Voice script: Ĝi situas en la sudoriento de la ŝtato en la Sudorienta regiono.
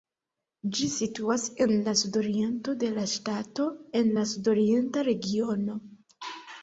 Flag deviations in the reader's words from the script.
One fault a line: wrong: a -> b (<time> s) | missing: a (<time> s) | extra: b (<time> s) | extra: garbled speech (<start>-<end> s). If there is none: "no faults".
no faults